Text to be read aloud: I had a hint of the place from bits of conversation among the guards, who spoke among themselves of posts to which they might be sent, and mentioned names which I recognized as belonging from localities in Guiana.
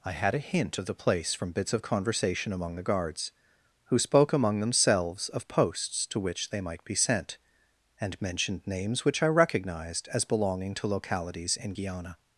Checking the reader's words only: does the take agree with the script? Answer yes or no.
no